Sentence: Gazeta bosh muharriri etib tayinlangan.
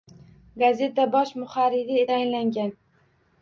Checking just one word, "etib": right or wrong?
wrong